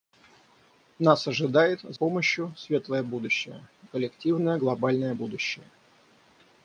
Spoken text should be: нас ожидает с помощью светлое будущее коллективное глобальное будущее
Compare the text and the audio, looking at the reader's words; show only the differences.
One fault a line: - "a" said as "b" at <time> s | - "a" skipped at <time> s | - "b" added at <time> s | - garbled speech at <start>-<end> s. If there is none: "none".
none